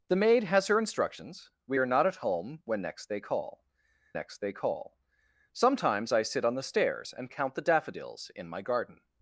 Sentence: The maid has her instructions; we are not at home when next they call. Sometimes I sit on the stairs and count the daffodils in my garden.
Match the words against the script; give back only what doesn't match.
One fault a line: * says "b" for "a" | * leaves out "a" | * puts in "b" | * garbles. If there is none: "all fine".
* puts in "next they call"